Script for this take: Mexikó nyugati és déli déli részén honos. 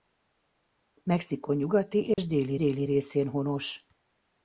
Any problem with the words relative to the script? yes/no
no